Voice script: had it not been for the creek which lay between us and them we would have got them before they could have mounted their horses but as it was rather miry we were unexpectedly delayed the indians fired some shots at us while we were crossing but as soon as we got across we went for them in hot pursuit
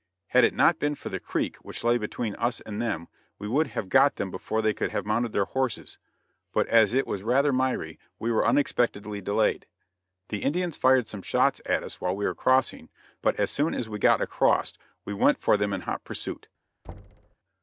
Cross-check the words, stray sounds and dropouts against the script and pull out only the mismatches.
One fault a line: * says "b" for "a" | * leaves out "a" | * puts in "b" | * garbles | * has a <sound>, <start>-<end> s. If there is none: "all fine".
* has a thud, 16.8-17.4 s